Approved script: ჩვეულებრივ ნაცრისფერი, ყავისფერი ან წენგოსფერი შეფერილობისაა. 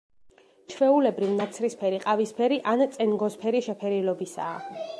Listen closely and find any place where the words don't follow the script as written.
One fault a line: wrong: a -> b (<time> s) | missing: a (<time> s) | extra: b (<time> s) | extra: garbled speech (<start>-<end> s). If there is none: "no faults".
no faults